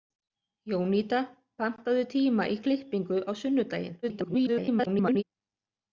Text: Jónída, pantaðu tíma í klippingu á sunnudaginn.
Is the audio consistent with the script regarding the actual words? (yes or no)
no